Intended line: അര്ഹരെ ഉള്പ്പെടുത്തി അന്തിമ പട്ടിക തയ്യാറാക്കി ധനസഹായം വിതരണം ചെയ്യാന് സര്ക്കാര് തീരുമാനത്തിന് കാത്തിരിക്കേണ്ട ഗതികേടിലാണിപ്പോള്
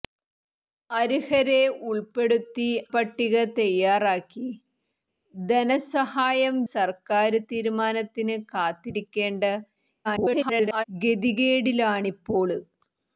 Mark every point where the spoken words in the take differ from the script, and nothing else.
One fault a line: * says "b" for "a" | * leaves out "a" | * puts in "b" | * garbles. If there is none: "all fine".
* leaves out "അന്തിമ"
* leaves out "വിതരണം ചെയ്യാന്"
* garbles